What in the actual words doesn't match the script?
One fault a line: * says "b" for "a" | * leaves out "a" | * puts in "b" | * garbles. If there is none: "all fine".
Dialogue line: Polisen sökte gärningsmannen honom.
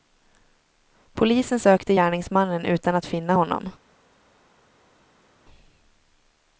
* puts in "utan att finna"